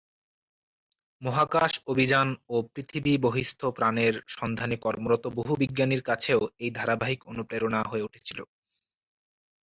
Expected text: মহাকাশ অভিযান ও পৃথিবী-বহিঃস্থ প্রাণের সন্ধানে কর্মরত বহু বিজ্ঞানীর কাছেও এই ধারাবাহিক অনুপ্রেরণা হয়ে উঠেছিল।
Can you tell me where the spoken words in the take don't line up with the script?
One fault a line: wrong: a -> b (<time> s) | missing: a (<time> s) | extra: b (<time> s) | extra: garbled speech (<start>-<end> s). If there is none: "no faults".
no faults